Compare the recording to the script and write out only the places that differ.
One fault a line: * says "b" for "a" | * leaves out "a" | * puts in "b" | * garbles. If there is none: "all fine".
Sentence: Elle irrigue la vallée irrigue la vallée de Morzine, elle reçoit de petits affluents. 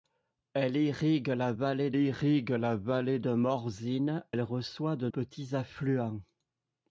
all fine